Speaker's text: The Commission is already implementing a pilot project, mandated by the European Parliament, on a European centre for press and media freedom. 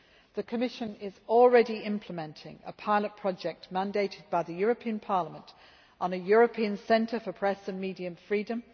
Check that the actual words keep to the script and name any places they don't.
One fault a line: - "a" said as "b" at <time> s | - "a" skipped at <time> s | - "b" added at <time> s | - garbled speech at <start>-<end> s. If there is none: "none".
none